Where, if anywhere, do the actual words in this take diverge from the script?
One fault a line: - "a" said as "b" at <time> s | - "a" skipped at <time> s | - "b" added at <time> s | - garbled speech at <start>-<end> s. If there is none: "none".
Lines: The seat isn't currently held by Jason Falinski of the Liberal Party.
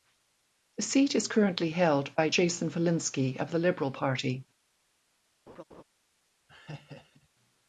- "isn't" said as "is" at 1.1 s